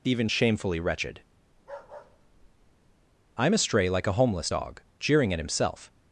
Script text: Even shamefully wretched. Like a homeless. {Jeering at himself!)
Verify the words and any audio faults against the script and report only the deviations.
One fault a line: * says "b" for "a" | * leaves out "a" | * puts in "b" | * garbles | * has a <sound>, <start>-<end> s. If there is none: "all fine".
* has a bark, 1.5-2.9 s
* puts in "I'm astray"
* puts in "dog"